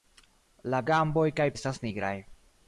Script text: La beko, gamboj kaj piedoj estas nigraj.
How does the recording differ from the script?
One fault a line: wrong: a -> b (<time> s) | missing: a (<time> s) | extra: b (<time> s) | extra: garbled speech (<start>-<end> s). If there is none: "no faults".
missing: beko (0.8 s)
missing: piedoj (1.5 s)